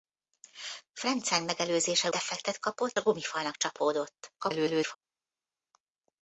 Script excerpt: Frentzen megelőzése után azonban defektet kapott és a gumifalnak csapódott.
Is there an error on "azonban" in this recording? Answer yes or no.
yes